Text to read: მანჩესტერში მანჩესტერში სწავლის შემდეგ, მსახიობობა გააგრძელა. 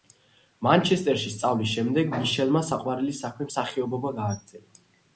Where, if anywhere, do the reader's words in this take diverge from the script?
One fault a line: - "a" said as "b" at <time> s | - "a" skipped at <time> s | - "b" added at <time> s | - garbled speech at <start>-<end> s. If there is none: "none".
- "მანჩესტერში" skipped at 1.3 s
- "მიშელმა საყვარელი საქმე" added at 2.1 s